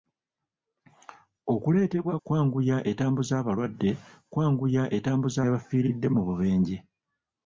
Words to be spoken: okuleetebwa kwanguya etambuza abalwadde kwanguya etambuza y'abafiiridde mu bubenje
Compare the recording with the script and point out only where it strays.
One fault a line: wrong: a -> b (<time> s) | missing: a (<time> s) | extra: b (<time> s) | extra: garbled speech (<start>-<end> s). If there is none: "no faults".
no faults